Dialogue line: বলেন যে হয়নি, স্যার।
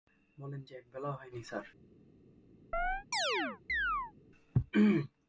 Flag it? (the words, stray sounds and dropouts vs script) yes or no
yes